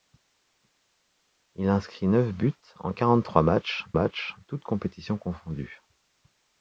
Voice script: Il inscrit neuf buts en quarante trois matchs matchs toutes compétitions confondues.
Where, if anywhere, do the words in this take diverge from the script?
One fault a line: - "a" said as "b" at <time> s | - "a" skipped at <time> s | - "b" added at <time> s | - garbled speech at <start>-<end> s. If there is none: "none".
none